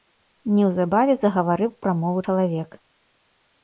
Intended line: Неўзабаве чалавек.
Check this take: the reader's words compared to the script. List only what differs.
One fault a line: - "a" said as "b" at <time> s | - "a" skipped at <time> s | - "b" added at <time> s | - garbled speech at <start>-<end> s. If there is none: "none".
- "загаварыў прамову" added at 1.2 s